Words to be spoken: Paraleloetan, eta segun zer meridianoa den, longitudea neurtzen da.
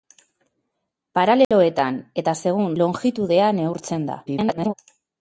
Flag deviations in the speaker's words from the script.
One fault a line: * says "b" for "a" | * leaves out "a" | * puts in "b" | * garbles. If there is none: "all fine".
* leaves out "zer meridianoa den"
* garbles